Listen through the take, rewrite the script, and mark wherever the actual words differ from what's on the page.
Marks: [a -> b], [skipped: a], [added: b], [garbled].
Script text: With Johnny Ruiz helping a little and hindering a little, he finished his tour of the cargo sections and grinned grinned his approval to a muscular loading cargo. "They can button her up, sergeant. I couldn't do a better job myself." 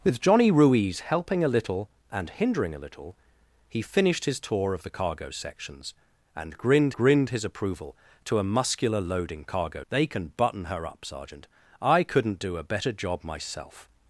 With Johnny Ruiz helping a little and hindering a little, he finished his tour of the cargo sections and grinned grinned his approval to a muscular loading cargo. "They can button her up, sergeant. I couldn't do a better job myself."